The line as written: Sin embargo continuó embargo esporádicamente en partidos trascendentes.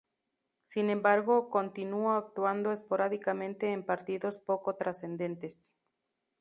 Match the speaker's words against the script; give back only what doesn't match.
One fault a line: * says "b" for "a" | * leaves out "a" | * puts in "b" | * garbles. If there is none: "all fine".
* says "actuando" for "embargo"
* puts in "poco"